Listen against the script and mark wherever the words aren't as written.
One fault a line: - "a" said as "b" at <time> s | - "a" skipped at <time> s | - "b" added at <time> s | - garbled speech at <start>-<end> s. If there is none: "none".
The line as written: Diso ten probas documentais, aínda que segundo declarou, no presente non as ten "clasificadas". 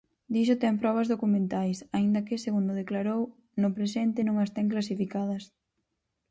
none